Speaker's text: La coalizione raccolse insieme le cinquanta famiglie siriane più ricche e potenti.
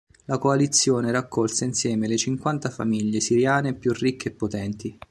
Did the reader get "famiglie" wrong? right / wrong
right